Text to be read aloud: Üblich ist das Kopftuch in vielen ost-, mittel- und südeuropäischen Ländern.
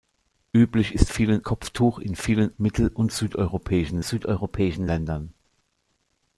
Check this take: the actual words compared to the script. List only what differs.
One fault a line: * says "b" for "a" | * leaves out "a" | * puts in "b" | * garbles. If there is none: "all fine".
* says "vielen" for "das"
* leaves out "ost"
* puts in "südeuropäischen"